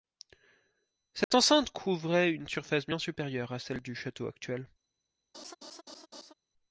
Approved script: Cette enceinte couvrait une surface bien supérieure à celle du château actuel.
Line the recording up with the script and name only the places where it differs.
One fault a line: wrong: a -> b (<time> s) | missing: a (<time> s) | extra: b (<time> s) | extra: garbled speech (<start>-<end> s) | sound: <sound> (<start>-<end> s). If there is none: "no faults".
sound: dropout (1.2-1.3 s)
sound: laugh (5.3-6.3 s)